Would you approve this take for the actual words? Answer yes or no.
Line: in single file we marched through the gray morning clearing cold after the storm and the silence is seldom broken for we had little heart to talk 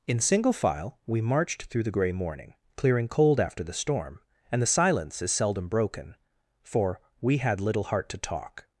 yes